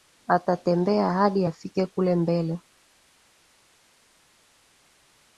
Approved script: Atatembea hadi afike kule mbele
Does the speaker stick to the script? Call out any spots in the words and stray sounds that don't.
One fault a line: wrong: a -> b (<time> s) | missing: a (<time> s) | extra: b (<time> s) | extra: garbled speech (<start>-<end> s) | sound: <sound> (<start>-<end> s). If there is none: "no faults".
no faults